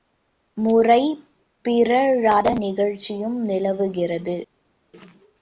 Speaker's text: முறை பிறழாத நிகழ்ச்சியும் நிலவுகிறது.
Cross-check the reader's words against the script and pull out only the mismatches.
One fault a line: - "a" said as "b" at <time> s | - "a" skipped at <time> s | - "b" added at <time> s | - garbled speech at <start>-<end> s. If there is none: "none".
none